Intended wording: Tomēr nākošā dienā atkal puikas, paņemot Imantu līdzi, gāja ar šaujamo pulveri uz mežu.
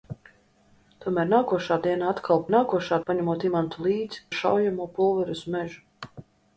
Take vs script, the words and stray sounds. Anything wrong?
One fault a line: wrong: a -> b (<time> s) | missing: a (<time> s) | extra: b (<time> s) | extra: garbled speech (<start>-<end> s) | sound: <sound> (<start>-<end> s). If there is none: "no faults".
wrong: puikas -> nākošā (2.5 s)
missing: gāja (4.2 s)